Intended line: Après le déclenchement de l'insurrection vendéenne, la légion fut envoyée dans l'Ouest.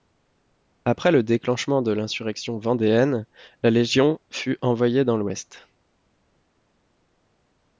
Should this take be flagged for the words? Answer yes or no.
no